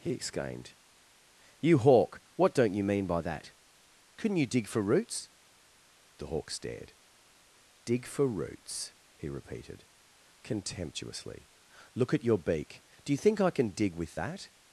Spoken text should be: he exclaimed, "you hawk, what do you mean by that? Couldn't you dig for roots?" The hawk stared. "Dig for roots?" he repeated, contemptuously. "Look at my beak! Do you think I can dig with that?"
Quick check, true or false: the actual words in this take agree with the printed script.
false